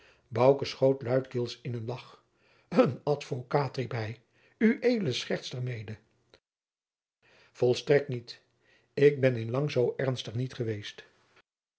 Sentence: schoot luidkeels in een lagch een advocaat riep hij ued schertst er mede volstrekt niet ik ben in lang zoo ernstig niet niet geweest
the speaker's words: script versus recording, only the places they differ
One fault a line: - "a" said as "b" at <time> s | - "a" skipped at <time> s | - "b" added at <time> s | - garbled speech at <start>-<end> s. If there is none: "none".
- "niet" skipped at 10.5 s